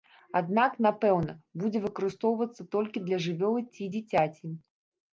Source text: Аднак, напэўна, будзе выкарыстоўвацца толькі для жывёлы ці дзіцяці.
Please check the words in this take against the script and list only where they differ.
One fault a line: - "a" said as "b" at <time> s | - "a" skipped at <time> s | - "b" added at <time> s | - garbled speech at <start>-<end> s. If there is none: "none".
none